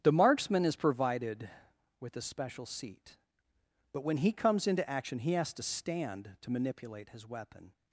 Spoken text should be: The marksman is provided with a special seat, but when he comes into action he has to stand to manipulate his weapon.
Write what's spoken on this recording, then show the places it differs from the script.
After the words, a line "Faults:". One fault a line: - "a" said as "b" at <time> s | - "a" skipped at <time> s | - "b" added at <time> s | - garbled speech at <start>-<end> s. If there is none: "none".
The marksman is provided with a special seat, but when he comes into action he has to stand to manipulate his weapon.
Faults:
none